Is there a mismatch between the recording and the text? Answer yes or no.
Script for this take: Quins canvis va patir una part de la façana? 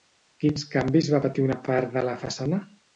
no